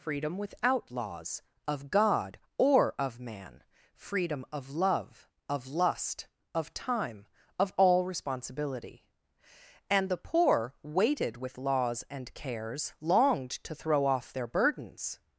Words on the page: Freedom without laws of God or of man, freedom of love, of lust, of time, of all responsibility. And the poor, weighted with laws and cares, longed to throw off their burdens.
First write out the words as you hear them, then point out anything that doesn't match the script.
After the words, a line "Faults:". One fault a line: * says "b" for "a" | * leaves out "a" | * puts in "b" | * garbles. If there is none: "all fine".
Freedom without laws of God or of man, freedom of love, of lust, of time, of all responsibility. And the poor, weighted with laws and cares, longed to throw off their burdens.
Faults:
all fine